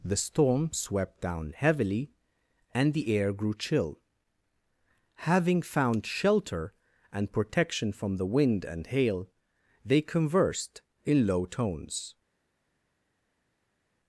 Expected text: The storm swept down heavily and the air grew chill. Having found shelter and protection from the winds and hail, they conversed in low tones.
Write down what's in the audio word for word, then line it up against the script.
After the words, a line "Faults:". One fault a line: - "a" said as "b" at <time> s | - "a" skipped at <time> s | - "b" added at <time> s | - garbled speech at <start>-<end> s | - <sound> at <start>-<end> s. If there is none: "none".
The storm swept down heavily and the air grew chill. Having found shelter and protection from the wind and hail, they conversed in low tones.
Faults:
- "winds" said as "wind" at 8.2 s